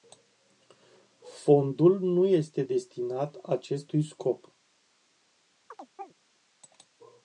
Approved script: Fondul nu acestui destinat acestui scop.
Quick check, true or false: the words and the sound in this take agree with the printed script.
false